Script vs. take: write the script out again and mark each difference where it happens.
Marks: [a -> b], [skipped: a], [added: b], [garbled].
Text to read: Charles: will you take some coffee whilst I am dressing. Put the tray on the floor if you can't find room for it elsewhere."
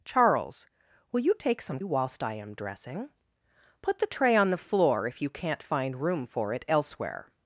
Charles: will you take some [skipped: coffee] whilst I am dressing. Put the tray on the floor if you can't find room for it elsewhere."